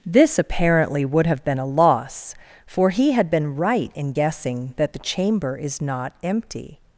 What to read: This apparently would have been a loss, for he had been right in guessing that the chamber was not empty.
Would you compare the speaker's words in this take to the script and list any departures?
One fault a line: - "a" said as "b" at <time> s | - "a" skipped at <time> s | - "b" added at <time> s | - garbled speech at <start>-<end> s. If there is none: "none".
- "was" said as "is" at 5.6 s